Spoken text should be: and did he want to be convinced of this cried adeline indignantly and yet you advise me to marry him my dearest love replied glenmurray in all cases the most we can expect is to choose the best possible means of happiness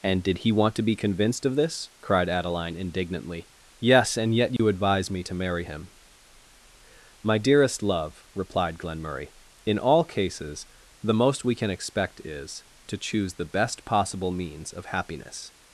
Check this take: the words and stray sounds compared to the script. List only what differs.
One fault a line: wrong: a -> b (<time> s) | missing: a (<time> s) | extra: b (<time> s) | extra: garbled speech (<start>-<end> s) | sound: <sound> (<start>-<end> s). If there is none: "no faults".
extra: yes (3.8 s)
sound: dropout (4.6-4.6 s)